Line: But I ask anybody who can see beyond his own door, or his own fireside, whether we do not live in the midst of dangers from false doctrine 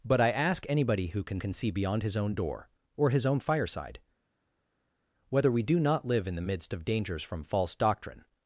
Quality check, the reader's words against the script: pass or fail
fail